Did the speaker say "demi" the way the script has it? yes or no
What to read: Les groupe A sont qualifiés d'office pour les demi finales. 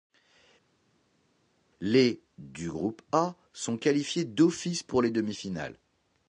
yes